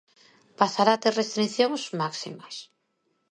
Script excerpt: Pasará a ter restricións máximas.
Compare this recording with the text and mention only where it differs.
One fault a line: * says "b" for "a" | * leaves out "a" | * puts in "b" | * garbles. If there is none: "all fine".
all fine